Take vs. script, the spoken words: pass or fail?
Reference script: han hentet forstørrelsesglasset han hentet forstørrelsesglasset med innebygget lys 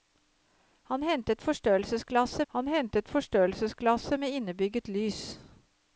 pass